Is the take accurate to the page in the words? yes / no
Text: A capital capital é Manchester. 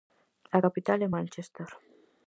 no